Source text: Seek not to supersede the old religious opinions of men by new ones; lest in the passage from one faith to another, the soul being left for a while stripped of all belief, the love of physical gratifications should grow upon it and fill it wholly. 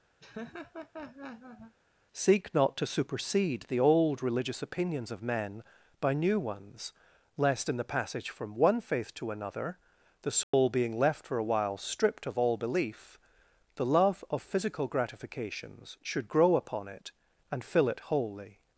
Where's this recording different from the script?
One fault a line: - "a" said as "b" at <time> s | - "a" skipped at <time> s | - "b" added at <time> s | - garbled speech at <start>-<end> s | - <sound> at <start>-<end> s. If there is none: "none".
- laugh at 0.2-1.8 s
- dropout at 10.4-10.5 s